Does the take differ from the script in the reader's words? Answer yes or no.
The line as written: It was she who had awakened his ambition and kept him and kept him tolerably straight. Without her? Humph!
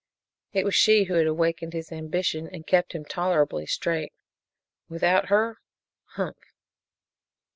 yes